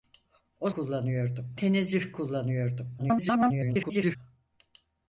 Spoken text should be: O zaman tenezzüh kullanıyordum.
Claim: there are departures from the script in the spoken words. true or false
true